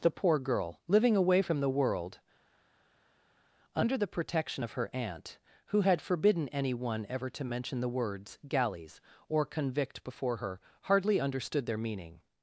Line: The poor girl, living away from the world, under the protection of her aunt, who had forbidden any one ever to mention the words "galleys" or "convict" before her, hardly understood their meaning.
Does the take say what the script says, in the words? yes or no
yes